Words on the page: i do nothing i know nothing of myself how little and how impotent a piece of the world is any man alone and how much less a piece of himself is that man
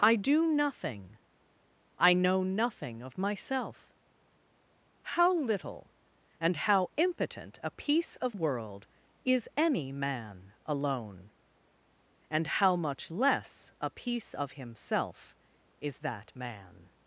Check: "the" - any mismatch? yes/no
yes